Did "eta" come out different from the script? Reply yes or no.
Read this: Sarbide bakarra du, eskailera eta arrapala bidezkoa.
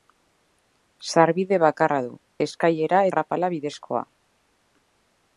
yes